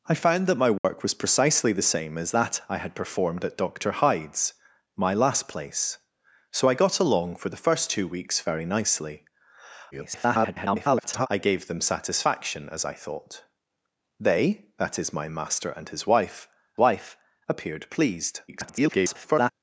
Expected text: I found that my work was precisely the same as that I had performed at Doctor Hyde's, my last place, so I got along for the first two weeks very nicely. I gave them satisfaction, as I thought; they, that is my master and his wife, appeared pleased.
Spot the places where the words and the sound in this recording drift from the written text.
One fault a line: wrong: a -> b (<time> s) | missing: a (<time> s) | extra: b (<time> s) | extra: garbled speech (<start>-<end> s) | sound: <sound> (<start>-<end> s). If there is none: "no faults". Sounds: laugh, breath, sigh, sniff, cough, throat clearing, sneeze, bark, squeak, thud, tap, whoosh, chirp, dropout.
sound: dropout (0.8-0.8 s)
extra: garbled speech (9.9-11.3 s)
extra: wife (16.8 s)
extra: garbled speech (18.5-19.5 s)